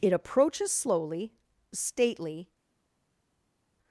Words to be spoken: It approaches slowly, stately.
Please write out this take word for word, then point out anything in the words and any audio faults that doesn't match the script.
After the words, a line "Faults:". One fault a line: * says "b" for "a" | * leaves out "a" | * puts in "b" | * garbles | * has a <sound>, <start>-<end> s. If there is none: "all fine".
It approaches slowly, stately.
Faults:
all fine